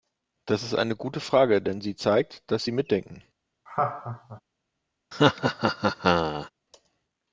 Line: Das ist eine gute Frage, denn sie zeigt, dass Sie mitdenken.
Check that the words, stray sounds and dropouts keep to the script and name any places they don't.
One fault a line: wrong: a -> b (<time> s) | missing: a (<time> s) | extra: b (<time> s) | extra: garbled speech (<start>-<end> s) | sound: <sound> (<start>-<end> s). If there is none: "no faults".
sound: laugh (3.7-4.4 s)
sound: laugh (5.1-6.5 s)